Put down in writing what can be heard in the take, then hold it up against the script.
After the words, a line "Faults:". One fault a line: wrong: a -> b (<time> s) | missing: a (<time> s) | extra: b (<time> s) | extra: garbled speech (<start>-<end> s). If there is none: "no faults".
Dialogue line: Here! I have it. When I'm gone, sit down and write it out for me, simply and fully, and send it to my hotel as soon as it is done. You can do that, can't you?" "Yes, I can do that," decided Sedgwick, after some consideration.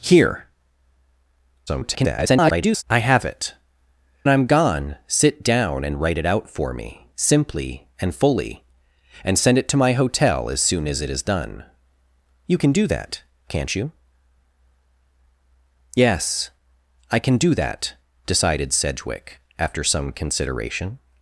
Here! [garbled] I have it. I'm gone, sit down and write it out for me, simply and fully, and send it to my hotel as soon as it is done. You can do that, can't you?" "Yes, I can do that," decided Sedgwick, after some consideration.
Faults:
extra: garbled speech (1.7-2.8 s)
missing: When (3.5 s)